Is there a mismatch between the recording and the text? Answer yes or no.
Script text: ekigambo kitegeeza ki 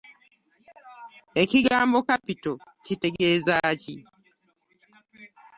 yes